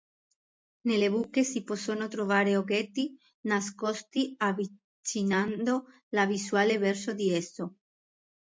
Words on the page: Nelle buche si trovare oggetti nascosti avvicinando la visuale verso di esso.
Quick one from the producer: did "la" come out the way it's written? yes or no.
yes